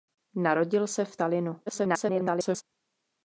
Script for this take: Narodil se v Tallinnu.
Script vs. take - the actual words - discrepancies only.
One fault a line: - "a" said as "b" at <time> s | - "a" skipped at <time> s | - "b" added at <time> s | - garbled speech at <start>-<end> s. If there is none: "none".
- garbled speech at 1.7-2.6 s